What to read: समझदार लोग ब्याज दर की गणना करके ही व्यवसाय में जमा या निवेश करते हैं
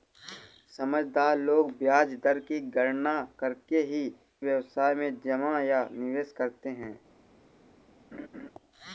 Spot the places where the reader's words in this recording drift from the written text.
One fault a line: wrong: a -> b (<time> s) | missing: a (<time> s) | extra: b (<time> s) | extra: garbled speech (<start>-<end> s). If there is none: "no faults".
no faults